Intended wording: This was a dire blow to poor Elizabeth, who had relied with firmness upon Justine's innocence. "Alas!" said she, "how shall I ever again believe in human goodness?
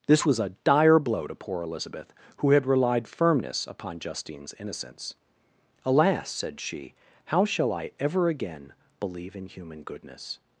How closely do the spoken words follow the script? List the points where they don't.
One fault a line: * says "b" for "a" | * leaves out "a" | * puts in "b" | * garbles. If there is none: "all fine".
* leaves out "with"